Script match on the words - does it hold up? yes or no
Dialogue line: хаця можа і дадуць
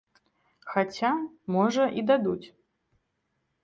yes